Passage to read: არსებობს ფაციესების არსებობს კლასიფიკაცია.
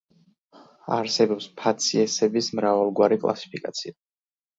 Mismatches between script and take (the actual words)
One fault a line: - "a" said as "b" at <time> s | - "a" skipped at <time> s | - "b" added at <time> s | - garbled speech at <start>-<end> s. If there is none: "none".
- "არსებობს" said as "მრავალგვარი" at 2.6 s